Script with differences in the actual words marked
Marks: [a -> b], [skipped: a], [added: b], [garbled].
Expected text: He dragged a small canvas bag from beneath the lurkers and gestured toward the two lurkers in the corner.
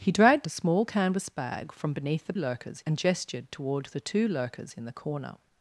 He dragged a small canvas bag from beneath the lurkers and gestured toward the two lurkers in the corner.